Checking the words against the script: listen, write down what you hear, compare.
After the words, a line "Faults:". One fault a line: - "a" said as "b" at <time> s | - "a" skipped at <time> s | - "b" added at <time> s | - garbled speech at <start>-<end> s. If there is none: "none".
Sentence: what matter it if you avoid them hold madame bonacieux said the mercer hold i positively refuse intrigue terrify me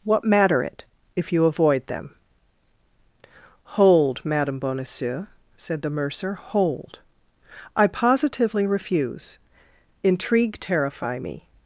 what matter it if you avoid them hold madame bonacieux said the mercer hold i positively refuse intrigue terrify me
Faults:
none